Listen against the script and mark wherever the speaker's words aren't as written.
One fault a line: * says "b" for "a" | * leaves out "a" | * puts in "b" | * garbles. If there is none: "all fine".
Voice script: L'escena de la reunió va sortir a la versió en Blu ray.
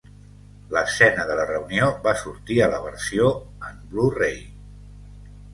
all fine